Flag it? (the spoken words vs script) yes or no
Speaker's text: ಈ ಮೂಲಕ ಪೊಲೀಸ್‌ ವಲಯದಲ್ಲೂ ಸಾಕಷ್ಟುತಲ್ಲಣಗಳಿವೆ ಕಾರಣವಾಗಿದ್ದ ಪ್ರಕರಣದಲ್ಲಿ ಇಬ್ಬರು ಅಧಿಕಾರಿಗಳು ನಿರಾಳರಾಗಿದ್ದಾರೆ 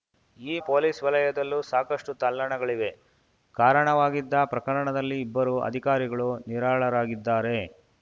yes